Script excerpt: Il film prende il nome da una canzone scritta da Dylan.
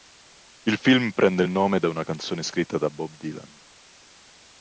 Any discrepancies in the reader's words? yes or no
yes